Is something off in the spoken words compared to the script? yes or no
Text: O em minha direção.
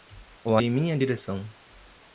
no